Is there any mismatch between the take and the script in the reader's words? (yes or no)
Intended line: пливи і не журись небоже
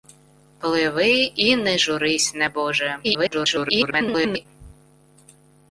yes